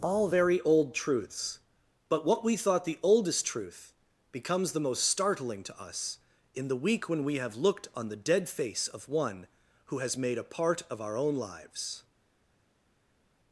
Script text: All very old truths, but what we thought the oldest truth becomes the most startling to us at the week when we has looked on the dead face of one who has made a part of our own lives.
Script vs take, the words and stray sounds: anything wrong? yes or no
yes